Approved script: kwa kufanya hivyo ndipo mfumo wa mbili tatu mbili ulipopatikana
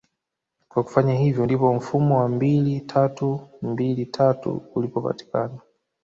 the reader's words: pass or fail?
fail